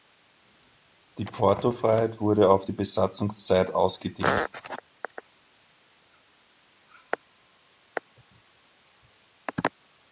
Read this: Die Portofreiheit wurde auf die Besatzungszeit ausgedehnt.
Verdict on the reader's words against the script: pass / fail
pass